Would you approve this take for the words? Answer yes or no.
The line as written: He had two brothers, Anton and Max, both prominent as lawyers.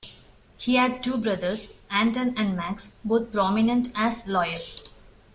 yes